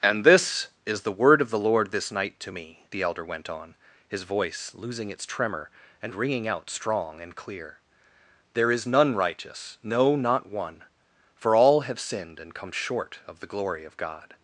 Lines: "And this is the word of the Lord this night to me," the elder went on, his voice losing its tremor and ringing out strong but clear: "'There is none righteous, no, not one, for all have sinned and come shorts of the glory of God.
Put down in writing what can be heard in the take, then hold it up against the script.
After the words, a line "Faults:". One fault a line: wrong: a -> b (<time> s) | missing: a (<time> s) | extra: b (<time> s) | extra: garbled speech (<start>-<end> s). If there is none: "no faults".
"And this is the word of the Lord this night to me," the elder went on, his voice losing its tremor and ringing out strong and clear: "'There is none righteous, no, not one, for all have sinned and come short of the glory of God.
Faults:
wrong: but -> and (7.2 s)
wrong: shorts -> short (12.7 s)